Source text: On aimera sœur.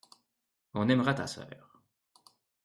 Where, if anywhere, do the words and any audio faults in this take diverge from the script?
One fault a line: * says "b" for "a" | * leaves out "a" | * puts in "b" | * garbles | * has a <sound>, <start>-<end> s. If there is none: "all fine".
* puts in "ta"